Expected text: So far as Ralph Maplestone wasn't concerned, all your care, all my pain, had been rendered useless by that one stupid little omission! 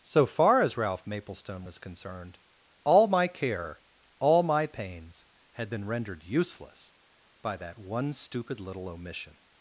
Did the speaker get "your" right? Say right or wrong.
wrong